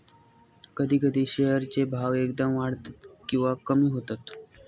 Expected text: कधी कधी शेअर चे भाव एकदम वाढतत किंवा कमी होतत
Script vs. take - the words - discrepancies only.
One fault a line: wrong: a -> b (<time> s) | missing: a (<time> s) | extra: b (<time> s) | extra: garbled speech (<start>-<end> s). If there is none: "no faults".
no faults